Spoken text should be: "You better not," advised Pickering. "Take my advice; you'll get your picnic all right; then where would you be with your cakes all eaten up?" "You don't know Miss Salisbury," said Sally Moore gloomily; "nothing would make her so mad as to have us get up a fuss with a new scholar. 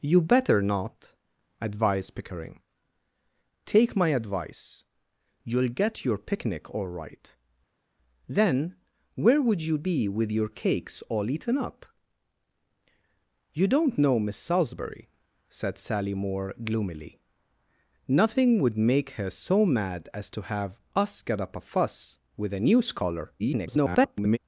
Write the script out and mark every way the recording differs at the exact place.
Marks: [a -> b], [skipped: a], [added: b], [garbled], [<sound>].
"You better not," advised Pickering. "Take my advice; you'll get your picnic all right; then where would you be with your cakes all eaten up?" "You don't know Miss Salisbury," said Sally Moore gloomily; "nothing would make her so mad as to have us get up a fuss with a new scholar. [garbled]